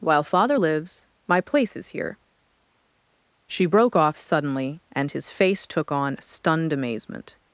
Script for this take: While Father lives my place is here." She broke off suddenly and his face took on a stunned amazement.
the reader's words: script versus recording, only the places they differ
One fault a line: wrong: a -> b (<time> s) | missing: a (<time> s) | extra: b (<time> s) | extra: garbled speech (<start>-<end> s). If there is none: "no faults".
missing: a (6.2 s)